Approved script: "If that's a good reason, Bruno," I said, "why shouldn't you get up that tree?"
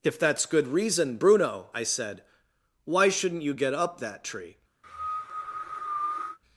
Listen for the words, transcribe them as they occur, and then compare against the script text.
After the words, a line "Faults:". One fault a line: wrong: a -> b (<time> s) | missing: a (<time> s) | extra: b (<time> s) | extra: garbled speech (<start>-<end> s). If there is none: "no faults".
"If that's good reason, Bruno," I said, "why shouldn't you get up that tree?"
Faults:
missing: a (0.5 s)